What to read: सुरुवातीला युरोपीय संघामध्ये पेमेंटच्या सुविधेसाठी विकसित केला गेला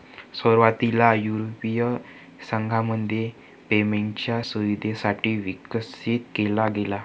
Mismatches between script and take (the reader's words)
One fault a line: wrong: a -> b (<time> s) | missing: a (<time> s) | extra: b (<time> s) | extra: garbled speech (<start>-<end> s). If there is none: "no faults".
no faults